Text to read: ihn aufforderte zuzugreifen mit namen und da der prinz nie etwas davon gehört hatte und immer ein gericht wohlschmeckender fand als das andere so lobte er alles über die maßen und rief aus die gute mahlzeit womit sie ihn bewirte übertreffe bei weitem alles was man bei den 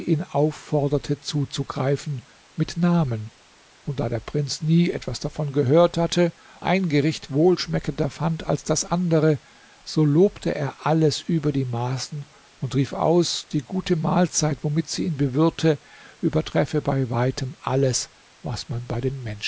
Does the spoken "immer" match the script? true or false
false